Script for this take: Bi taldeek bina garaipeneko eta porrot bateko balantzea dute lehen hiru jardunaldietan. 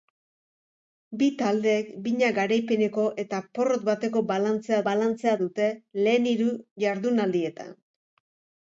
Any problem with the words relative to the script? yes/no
yes